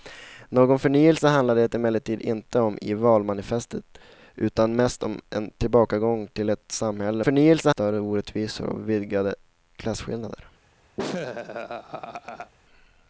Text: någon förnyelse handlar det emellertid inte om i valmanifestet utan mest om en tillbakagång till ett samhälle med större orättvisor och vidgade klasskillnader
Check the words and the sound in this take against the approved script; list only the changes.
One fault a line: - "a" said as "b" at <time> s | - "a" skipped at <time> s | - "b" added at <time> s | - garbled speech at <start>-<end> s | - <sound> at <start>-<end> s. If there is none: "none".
- "med" said as "förnyelse" at 7.2 s
- laugh at 11.0-12.5 s